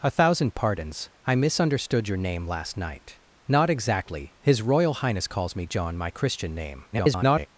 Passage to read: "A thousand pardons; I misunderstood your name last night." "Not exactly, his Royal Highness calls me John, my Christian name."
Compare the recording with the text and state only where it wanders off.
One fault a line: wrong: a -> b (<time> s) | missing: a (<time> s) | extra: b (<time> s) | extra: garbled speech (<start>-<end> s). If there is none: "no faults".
extra: garbled speech (6.9-7.5 s)